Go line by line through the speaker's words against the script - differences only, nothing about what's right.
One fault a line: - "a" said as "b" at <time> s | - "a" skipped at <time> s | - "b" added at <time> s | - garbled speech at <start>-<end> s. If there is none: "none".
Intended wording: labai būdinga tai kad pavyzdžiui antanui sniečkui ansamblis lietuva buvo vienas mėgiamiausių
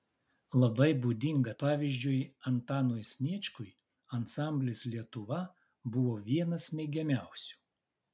- "tai kad" skipped at 1.5 s